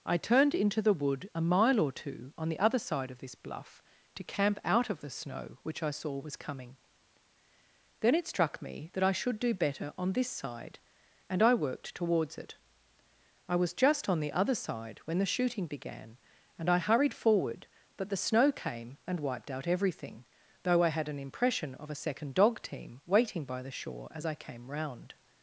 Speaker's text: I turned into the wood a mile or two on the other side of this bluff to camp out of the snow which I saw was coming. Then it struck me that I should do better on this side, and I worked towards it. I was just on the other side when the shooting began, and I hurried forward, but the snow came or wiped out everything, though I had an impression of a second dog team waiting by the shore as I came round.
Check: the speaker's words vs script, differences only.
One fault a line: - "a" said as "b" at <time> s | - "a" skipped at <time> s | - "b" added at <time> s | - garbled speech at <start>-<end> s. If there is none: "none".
- "or" said as "and" at 19.0 s